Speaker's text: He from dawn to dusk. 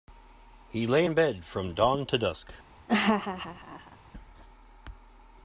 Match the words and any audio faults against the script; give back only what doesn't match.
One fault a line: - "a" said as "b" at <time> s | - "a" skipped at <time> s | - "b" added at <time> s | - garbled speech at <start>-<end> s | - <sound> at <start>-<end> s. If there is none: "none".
- "lay in bed" added at 0.9 s
- laugh at 2.9-4.0 s